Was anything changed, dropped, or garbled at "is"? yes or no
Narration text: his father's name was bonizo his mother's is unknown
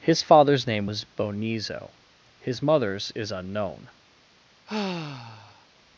no